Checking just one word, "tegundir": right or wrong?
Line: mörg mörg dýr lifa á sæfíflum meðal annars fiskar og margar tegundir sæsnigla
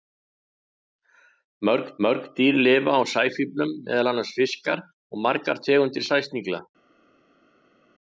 right